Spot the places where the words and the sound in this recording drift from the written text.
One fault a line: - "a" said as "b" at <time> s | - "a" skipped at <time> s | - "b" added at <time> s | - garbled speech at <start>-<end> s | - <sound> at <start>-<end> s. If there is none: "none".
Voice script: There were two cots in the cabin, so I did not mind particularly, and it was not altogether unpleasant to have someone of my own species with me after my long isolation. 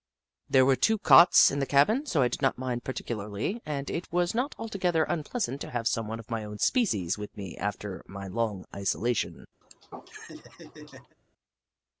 - laugh at 9.6-11.2 s